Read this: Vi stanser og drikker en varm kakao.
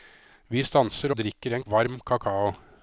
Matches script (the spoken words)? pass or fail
pass